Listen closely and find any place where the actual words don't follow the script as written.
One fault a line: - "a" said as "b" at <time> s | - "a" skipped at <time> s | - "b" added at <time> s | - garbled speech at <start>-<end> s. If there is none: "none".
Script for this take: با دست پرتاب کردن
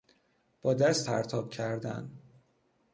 none